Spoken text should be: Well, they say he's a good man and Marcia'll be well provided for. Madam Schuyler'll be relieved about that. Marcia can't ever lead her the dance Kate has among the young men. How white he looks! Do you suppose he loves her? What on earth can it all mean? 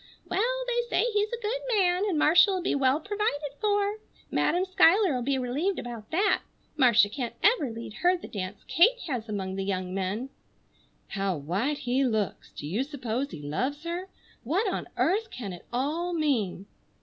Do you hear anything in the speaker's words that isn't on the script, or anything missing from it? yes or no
no